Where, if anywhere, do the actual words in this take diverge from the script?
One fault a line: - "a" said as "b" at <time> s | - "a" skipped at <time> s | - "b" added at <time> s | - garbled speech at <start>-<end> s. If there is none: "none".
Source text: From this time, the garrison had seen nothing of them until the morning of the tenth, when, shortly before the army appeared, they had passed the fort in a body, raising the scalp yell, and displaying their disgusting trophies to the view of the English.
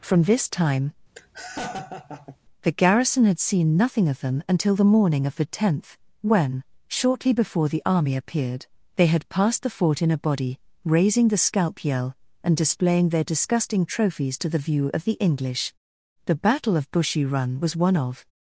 - "The battle of Bushy Run was one of" added at 16.3 s